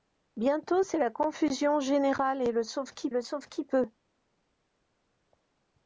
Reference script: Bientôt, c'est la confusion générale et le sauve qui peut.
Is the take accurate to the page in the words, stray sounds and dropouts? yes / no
no